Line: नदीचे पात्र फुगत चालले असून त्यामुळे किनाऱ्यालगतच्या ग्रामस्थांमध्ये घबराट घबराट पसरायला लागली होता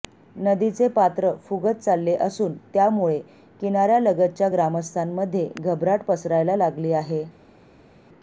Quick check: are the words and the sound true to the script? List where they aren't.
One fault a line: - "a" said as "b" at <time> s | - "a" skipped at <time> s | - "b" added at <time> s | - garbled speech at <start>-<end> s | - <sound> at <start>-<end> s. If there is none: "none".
- "घबराट" skipped at 6.0 s
- "होता" said as "आहे" at 6.9 s